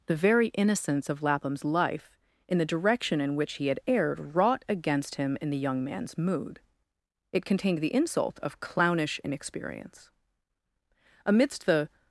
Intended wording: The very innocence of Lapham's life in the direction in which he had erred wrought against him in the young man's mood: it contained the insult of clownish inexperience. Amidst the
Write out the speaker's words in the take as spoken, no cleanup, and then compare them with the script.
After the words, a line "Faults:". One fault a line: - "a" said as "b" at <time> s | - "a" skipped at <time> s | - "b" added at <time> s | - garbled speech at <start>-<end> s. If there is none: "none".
The very innocence of Lapham's life in the direction in which he had erred wrought against him in the young man's mood: it contained the insult of clownish inexperience. Amidst the
Faults:
none